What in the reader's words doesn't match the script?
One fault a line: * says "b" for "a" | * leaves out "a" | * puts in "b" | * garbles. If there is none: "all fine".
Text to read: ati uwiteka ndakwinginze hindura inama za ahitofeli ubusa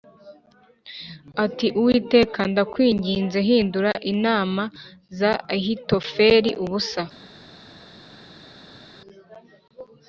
all fine